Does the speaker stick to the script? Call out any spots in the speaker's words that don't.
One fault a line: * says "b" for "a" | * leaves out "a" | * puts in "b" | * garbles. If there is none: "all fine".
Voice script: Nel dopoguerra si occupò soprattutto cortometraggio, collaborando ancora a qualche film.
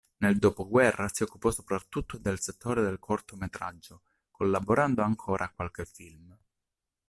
* puts in "del settore del"